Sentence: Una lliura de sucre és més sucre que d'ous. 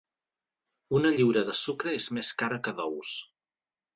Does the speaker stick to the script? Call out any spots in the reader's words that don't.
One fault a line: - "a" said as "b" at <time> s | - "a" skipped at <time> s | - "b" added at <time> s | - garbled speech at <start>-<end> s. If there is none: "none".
- "sucre" said as "cara" at 2.4 s